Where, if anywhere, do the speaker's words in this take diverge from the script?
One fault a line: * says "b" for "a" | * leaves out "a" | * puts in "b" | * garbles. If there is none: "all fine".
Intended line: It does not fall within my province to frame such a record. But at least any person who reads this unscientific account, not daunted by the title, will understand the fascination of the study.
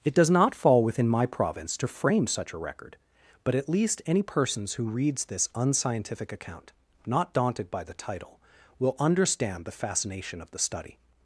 * says "persons" for "person"